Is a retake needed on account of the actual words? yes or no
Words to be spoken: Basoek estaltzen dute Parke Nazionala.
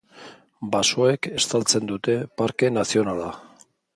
no